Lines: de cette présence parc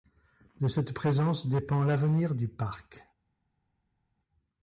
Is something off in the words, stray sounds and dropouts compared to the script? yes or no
yes